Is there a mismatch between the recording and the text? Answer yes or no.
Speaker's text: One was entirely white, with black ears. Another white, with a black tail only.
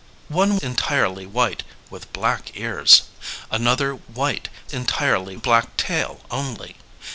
yes